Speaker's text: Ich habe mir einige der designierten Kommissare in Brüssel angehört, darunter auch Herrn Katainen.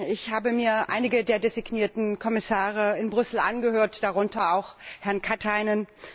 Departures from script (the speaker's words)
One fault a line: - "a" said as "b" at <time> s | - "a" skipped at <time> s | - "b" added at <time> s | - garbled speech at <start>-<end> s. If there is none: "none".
none